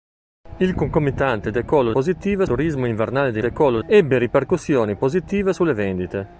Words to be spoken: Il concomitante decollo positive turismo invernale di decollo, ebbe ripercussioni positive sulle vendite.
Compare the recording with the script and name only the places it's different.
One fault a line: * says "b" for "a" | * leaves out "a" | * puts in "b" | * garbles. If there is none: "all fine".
all fine